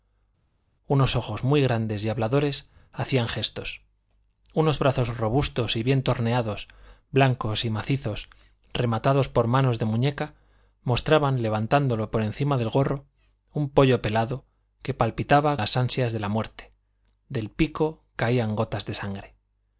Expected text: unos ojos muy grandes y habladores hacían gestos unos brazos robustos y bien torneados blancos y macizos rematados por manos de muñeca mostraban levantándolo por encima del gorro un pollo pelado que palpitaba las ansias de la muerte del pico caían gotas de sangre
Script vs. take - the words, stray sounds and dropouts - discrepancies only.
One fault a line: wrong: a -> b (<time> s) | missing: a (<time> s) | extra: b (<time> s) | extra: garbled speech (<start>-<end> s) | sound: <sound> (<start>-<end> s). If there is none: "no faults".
no faults